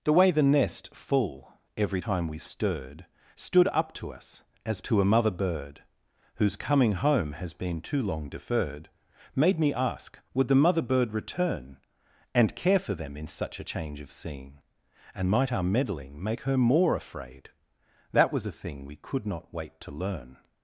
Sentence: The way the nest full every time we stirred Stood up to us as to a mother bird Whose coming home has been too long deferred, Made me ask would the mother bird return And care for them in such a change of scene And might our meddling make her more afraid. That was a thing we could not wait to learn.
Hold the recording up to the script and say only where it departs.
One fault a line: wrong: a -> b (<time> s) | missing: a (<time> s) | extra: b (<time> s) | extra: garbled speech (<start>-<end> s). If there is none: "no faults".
no faults